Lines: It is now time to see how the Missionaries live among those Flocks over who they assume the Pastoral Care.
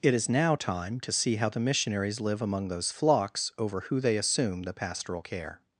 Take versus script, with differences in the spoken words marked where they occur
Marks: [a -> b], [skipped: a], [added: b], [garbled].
It is now time to see how the Missionaries live among those Flocks over who they assume the Pastoral Care.